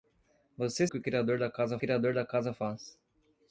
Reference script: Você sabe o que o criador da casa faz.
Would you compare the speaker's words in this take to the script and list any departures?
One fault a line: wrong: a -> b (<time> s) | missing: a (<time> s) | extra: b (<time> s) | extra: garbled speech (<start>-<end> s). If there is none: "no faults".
missing: sabe (0.9 s)
extra: criador da casa (1.8 s)